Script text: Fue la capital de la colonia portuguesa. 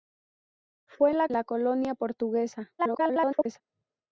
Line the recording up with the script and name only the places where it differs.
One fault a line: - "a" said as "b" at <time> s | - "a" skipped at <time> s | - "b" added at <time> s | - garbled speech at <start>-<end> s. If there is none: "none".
- "capital de" skipped at 1.3 s
- garbled speech at 2.8-3.6 s